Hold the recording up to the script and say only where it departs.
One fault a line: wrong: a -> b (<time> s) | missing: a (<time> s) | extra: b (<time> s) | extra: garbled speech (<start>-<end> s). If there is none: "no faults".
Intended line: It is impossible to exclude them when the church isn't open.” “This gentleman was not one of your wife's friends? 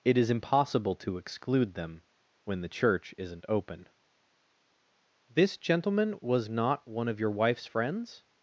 no faults